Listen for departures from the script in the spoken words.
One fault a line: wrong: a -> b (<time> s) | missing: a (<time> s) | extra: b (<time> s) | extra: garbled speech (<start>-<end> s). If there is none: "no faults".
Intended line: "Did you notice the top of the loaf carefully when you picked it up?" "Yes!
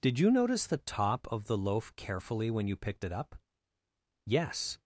no faults